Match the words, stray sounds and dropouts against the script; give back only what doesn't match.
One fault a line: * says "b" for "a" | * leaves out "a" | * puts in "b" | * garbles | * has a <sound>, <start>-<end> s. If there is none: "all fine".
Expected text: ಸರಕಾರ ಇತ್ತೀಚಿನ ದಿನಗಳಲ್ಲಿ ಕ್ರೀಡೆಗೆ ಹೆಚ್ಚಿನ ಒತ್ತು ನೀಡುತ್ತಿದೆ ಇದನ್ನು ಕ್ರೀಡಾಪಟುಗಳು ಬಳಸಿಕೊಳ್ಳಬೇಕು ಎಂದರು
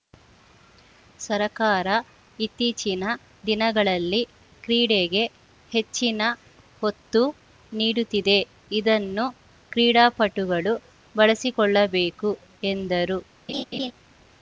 * has a laugh, 13.5-13.9 s